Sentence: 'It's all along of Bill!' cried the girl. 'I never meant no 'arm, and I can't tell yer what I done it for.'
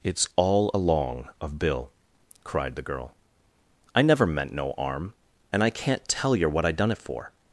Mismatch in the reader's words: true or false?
false